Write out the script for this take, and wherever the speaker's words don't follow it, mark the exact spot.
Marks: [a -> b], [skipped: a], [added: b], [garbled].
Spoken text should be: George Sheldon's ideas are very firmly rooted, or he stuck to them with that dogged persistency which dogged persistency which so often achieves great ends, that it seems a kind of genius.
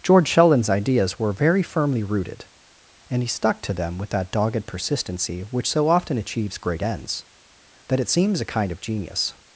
George Sheldon's ideas [are -> were] very firmly rooted, [or -> and] he stuck to them with that dogged persistency which [skipped: dogged persistency which] so often achieves great ends, that it seems a kind of genius.